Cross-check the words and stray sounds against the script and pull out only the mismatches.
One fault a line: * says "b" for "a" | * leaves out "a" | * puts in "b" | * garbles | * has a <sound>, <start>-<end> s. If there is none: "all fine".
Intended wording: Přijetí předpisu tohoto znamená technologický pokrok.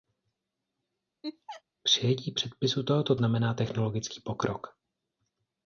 * has a laugh, 1.2-1.6 s